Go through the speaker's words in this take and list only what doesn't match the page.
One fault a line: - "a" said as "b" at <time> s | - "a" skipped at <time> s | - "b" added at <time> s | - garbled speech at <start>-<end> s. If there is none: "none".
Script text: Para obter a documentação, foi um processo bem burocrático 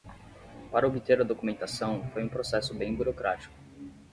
none